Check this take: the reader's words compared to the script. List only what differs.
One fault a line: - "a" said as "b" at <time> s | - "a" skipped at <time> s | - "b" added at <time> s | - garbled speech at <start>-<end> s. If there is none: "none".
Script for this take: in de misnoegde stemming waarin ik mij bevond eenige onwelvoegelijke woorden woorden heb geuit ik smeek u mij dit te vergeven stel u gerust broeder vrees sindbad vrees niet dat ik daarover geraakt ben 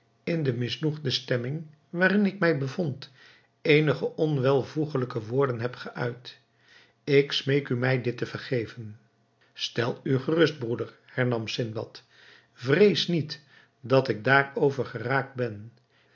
- "woorden" skipped at 5.6 s
- "vrees" said as "hernam" at 11.1 s